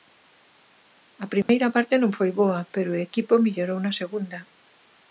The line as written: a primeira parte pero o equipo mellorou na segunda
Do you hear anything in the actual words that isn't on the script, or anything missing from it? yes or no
yes